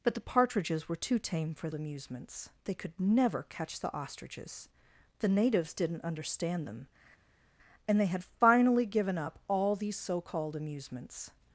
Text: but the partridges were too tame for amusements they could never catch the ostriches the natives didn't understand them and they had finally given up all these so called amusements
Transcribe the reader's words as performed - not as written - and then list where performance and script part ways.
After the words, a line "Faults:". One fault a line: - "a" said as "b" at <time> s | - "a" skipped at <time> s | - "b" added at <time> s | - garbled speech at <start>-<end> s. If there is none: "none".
but the partridges were too tame for amusements they could never catch the ostriches the natives didn't understand them and they had finally given up all these so called amusements
Faults:
none